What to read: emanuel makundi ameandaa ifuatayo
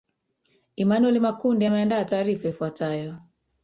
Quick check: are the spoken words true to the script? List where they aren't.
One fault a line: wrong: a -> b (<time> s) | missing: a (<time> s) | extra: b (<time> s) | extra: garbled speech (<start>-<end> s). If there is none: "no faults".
extra: taarifa (2.0 s)